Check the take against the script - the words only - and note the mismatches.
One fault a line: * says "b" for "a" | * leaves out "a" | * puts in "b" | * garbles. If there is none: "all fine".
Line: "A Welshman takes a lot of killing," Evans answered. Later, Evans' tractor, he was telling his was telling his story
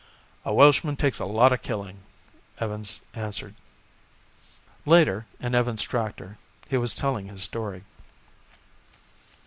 * puts in "in"
* leaves out "was telling his"